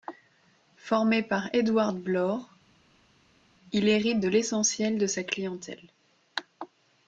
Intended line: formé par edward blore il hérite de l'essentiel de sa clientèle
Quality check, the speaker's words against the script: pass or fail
pass